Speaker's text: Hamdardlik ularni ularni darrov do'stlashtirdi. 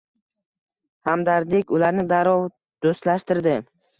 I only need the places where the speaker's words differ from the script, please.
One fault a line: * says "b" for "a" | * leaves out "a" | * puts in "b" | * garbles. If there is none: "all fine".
* leaves out "ularni"